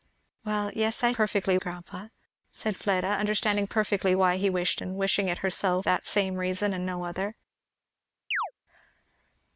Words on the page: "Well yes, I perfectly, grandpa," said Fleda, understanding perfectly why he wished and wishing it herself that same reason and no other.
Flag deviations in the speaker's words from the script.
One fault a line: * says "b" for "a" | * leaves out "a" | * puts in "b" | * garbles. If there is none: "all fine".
all fine